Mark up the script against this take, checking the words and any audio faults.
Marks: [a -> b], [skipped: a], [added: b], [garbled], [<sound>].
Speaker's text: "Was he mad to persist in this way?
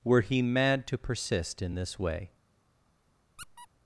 ["Was -> Were] he mad to persist in this way? [squeak]